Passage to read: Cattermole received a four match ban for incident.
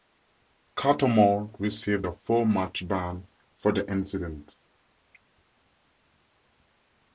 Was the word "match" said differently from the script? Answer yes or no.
no